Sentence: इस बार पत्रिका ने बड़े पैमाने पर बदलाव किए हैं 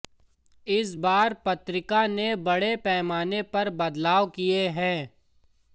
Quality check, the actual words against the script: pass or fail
pass